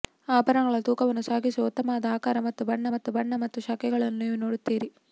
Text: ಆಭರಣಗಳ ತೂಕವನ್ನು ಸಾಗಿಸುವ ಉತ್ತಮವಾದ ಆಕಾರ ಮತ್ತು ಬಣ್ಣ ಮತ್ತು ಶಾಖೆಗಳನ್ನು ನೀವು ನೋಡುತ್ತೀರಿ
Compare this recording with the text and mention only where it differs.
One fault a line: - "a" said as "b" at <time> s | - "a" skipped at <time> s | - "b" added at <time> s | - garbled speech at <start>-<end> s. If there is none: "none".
- "ಬಣ್ಣ ಮತ್ತು" added at 3.2 s